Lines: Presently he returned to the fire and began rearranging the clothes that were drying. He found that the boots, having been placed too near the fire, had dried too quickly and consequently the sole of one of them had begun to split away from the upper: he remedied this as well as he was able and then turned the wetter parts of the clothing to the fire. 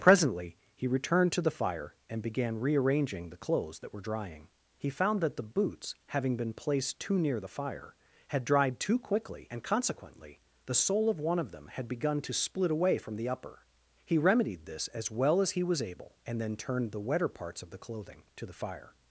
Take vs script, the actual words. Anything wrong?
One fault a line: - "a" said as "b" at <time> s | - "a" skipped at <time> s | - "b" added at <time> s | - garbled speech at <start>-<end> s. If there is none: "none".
none